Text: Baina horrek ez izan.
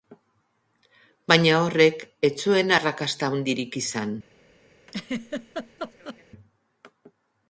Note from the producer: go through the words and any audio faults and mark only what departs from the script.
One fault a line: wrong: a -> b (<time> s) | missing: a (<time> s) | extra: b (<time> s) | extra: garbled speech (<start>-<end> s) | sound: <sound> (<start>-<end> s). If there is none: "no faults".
extra: zuen arrakasta handirik (2.5 s)
sound: laugh (4.9-6.2 s)